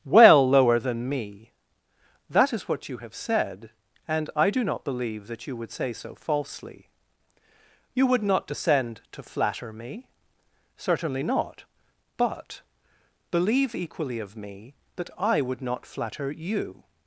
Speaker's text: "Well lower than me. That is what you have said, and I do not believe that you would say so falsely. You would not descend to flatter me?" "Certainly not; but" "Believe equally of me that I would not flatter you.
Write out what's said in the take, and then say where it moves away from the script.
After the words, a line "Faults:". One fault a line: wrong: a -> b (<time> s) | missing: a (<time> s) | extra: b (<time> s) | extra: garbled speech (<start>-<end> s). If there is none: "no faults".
"Well lower than me. That is what you have said, and I do not believe that you would say so falsely. You would not descend to flatter me?" "Certainly not; but" "Believe equally of me that I would not flatter you.
Faults:
no faults